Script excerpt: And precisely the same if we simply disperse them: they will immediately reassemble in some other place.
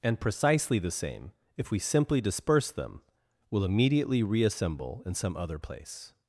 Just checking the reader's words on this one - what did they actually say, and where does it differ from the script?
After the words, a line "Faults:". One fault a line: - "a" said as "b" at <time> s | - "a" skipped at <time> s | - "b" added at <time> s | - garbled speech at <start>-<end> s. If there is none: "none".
And precisely the same if we simply disperse them: will immediately reassemble in some other place.
Faults:
- "they" skipped at 3.0 s